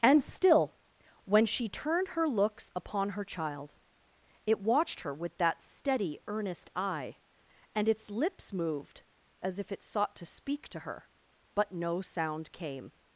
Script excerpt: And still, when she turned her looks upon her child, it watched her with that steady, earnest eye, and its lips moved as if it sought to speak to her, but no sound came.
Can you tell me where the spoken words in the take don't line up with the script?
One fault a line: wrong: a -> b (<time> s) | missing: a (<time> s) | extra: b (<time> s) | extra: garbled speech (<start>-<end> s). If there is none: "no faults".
no faults